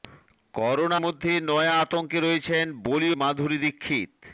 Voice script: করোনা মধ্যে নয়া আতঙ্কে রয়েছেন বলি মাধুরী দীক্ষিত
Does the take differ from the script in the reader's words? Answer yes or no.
no